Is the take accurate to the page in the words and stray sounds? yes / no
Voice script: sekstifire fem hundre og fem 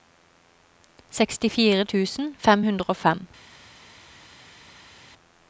no